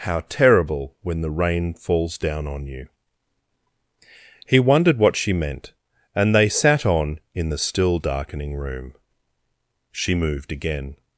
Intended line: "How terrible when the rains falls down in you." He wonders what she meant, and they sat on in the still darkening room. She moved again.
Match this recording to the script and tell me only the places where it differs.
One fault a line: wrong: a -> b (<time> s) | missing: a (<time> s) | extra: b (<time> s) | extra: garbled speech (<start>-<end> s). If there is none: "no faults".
wrong: rains -> rain (1.3 s)
wrong: in -> on (2.5 s)
wrong: wonders -> wondered (4.6 s)